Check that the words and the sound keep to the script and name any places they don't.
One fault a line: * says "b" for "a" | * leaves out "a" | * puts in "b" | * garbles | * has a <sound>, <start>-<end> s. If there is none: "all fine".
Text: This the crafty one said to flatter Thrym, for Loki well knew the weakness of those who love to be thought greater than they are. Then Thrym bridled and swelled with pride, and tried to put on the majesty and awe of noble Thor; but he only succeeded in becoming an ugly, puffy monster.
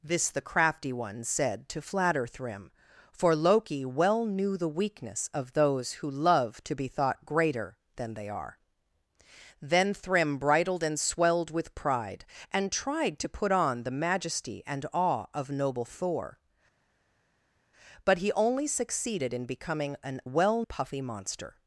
* says "well" for "ugly"